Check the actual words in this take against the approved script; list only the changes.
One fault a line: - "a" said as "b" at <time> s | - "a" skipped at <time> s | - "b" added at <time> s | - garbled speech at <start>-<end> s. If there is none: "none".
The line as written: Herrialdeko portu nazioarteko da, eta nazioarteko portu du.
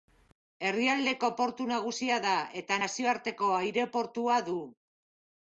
- "nazioarteko" said as "nagusia" at 1.7 s
- "portu" said as "aireportua" at 3.6 s